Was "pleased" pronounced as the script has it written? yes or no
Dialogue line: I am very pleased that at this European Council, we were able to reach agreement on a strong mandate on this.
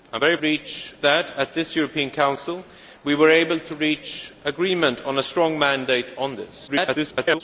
no